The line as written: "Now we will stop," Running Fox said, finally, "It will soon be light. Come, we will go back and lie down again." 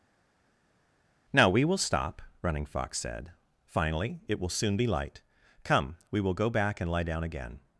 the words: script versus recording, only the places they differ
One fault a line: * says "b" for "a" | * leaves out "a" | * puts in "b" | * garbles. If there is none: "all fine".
all fine